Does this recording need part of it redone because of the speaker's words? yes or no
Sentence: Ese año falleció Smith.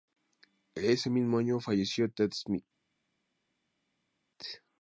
yes